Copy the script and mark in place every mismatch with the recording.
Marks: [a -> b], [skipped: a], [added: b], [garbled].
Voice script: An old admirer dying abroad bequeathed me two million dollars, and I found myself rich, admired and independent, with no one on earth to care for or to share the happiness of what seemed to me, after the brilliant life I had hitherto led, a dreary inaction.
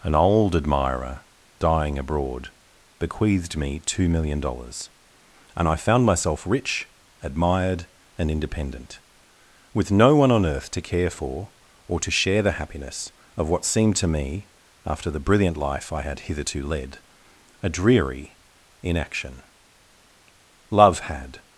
An old admirer dying abroad bequeathed me two million dollars, and I found myself rich, admired and independent, with no one on earth to care for or to share the happiness of what seemed to me, after the brilliant life I had hitherto led, a dreary inaction. [added: Love had]